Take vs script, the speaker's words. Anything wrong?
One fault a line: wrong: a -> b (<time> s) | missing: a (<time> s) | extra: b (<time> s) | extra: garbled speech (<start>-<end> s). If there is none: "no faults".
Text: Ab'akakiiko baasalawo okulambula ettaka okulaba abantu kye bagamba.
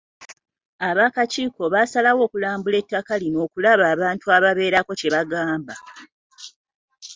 extra: lino (3.2 s)
extra: ababeerako (4.4 s)